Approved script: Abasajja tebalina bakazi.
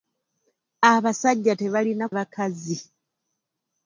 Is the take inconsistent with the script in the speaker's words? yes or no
no